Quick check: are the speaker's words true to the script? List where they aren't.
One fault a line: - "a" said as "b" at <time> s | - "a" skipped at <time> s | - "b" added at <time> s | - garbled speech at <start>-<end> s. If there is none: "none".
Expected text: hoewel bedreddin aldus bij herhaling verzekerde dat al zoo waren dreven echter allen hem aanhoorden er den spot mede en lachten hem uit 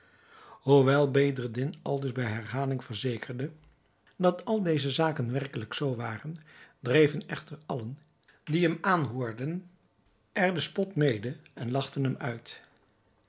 - "deze zaken werkelijk" added at 4.6 s
- "die" added at 8.4 s